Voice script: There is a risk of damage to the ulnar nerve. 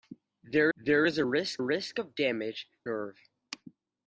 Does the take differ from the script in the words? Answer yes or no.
yes